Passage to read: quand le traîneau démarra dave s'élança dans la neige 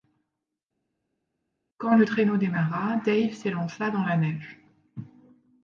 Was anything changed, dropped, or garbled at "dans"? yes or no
no